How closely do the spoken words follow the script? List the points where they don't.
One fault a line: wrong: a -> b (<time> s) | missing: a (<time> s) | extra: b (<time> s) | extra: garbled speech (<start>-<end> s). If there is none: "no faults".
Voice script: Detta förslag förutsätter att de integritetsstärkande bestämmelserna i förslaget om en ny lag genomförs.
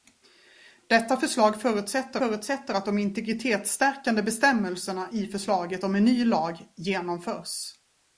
extra: förutsätter (2.2 s)